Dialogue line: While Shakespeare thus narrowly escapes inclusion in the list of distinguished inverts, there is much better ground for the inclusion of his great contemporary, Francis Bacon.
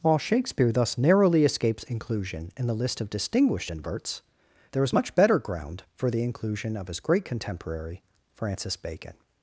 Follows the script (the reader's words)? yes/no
yes